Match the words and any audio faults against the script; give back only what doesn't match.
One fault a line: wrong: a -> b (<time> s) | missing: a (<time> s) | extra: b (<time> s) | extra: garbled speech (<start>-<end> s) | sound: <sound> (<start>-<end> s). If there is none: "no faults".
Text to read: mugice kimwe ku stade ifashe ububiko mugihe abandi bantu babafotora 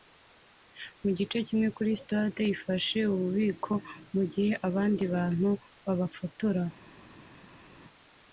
wrong: ku -> kuri (1.8 s)